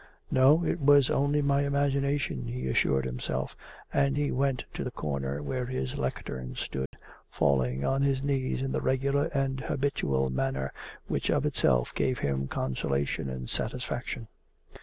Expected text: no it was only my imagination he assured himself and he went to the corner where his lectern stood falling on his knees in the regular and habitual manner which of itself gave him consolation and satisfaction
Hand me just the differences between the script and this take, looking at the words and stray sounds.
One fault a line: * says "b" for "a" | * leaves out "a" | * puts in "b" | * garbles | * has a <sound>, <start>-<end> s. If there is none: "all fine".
* has a dropout, 6.9-6.9 s